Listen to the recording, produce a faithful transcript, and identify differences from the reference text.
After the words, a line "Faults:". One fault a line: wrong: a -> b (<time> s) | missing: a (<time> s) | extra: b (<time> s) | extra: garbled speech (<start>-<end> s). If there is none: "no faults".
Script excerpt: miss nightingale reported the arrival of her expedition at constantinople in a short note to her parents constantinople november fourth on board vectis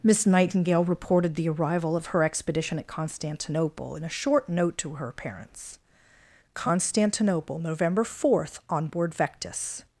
miss nightingale reported the arrival of her expedition at constantinople in a short note to her parents constantinople november fourth on board vectis
Faults:
no faults